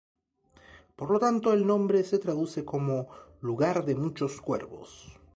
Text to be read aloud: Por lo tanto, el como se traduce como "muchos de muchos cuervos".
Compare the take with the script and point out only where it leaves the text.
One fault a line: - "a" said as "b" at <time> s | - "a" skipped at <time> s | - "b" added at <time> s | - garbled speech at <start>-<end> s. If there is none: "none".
- "como" said as "nombre" at 1.7 s
- "muchos" said as "lugar" at 3.4 s